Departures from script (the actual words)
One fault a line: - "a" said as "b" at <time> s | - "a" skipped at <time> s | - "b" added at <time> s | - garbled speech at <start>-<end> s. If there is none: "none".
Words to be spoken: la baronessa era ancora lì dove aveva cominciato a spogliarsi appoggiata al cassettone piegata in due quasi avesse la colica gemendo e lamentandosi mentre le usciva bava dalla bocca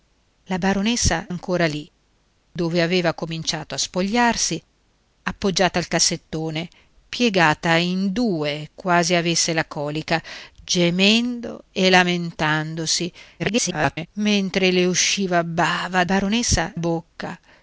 - "era" skipped at 1.3 s
- garbled speech at 13.4-14.1 s
- "dalla" said as "baronessa" at 16.0 s